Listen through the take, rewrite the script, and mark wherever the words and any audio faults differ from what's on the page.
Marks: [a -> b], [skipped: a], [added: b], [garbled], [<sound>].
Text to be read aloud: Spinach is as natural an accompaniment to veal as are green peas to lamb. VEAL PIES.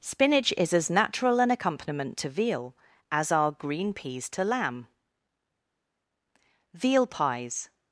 Spinach is as natural an accompaniment to veal as are green peas to lamb. VEAL PIES.